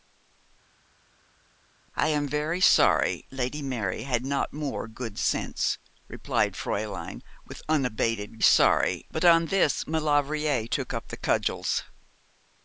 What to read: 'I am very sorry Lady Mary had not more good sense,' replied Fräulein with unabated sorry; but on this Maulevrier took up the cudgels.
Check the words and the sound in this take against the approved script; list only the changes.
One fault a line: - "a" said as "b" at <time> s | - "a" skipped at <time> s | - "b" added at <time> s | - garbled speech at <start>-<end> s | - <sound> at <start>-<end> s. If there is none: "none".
none